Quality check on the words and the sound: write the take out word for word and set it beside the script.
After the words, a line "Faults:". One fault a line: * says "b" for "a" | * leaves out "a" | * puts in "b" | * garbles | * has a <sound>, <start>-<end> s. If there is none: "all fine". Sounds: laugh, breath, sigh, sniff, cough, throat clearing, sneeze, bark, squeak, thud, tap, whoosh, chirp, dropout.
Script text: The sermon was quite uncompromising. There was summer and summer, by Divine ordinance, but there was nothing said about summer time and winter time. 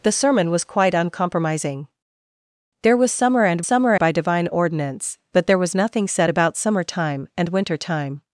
The sermon was quite uncompromising. There was summer and summer, by Divine ordinance, but there was nothing said about summer time and winter time.
Faults:
all fine